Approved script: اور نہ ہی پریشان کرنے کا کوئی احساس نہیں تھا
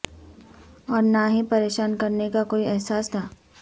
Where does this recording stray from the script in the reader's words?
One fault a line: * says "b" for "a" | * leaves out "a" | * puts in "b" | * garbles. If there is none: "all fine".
* leaves out "نہیں"